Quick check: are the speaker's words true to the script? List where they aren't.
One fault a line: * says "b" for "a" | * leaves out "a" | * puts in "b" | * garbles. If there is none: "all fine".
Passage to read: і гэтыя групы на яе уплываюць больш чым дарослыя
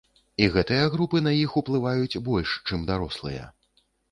* says "іх" for "яе"